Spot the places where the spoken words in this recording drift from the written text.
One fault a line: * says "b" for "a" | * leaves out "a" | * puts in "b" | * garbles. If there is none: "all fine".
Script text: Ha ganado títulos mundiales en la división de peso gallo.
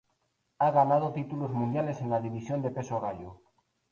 all fine